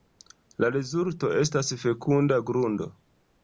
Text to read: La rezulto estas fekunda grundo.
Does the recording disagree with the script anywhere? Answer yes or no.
no